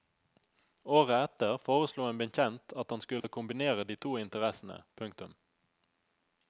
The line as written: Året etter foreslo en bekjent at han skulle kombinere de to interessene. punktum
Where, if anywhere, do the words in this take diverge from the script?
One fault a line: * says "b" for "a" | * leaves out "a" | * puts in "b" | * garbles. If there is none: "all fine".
all fine